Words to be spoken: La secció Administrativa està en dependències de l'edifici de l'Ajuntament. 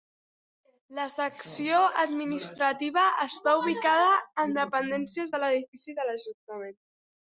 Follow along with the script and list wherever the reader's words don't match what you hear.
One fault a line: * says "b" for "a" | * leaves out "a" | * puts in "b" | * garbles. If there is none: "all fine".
* puts in "ubicada"